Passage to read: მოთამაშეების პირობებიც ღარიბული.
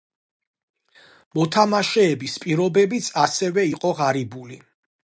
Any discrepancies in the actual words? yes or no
yes